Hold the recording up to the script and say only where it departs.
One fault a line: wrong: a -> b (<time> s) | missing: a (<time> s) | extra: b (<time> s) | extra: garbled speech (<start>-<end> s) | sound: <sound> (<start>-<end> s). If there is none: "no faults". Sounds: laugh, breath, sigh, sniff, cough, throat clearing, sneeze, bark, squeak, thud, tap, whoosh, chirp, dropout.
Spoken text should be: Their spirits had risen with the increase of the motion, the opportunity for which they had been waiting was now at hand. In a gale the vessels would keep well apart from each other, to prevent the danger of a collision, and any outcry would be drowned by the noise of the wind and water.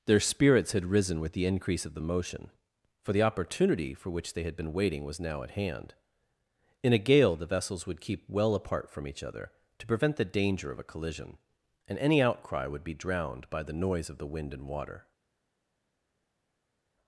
extra: for (3.0 s)